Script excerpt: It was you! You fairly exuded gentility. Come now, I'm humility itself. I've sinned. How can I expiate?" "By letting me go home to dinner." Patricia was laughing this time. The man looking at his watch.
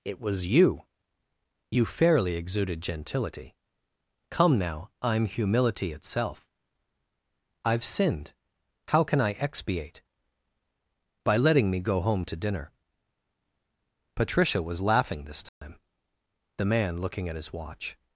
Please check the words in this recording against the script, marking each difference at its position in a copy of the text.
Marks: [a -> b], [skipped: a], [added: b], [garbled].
It was you! You fairly exuded gentility. Come now, I'm humility itself. I've sinned. How can I expiate?" "By letting me go home to dinner." Patricia was laughing this time. The man looking at his watch.